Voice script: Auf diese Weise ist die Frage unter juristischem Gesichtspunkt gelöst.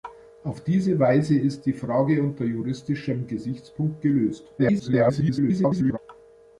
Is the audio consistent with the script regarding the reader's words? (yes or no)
no